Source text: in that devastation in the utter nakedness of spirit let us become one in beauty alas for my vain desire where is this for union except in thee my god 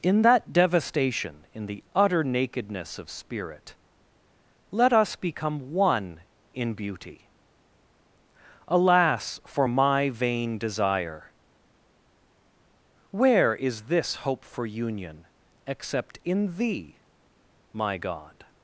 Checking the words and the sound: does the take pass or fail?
fail